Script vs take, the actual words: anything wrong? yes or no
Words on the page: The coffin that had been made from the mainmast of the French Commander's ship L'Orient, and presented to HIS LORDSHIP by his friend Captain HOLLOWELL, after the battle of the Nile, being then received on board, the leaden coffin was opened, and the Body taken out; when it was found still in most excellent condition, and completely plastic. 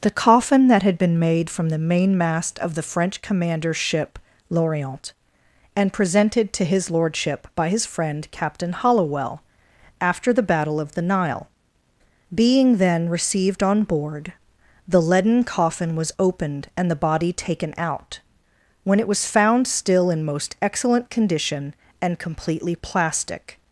no